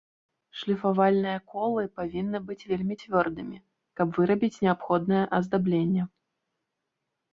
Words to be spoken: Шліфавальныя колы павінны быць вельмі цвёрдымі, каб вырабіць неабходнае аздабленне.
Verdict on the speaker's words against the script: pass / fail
pass